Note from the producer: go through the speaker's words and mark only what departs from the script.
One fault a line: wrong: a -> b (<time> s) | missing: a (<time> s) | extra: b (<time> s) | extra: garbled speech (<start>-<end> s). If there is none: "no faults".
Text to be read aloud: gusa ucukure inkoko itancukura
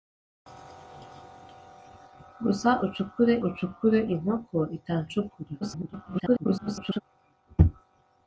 extra: ucukure (3.5 s)
extra: garbled speech (5.6-7.0 s)